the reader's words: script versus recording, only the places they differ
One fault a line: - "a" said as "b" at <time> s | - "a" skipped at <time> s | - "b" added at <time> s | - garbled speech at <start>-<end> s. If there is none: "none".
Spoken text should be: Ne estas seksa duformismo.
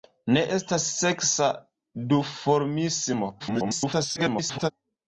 - garbled speech at 3.4-4.7 s